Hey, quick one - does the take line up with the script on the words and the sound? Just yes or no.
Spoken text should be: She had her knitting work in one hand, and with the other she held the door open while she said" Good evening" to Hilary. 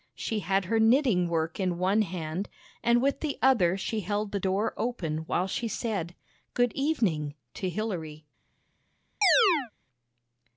no